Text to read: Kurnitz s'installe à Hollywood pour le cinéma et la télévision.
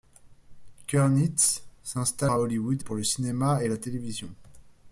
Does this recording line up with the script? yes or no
yes